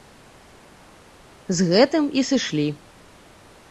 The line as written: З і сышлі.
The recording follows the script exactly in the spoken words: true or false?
false